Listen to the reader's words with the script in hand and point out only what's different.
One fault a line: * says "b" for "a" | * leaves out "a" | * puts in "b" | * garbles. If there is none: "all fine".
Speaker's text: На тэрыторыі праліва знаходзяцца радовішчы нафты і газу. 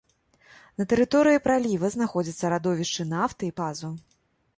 all fine